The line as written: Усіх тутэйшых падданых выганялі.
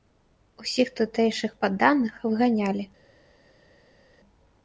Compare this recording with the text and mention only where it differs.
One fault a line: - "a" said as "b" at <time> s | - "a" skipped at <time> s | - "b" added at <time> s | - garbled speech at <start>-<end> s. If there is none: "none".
none